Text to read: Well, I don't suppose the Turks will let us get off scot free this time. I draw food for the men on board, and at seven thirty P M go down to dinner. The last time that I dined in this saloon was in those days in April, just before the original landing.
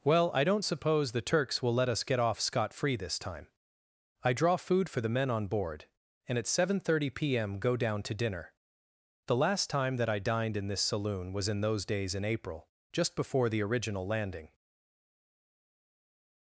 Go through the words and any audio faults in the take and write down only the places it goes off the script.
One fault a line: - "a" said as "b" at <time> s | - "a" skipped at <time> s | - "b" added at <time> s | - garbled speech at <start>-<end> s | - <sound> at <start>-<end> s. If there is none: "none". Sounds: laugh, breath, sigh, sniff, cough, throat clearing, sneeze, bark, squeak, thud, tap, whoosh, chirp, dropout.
none